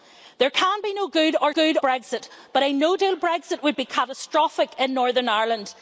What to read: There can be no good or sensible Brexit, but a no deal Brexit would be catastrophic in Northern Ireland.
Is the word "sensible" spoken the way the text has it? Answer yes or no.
no